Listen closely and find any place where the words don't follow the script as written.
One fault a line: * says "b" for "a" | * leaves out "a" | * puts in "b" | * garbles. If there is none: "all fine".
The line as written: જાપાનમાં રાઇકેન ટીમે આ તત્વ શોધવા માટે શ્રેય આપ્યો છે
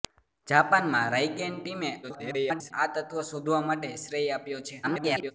* garbles
* garbles